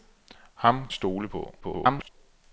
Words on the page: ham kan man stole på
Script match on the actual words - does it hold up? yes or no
no